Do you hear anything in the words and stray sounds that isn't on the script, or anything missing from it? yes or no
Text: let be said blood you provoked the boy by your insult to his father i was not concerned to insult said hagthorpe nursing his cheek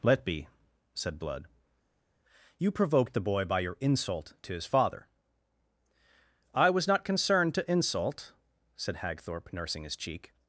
no